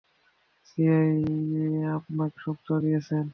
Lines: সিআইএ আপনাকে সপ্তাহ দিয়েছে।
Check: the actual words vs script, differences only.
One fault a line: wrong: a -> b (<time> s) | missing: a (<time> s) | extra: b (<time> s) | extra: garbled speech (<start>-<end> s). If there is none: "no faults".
no faults